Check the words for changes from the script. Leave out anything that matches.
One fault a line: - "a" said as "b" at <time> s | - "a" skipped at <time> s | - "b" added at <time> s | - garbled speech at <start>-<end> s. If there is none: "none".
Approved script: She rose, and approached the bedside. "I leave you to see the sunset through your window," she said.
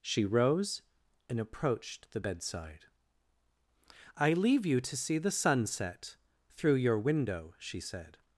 none